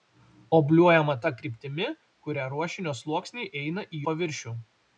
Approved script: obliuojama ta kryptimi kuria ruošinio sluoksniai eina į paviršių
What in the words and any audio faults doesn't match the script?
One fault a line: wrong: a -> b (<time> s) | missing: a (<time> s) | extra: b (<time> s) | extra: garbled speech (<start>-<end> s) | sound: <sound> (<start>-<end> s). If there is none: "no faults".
no faults